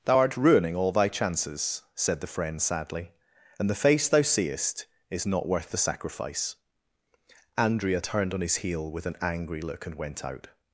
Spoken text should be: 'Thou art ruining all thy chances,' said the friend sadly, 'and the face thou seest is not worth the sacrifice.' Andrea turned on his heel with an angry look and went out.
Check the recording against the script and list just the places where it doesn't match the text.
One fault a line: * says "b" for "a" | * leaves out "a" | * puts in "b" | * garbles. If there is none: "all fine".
all fine